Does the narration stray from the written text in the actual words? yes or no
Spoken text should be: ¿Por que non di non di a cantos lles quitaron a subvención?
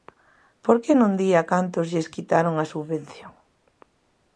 yes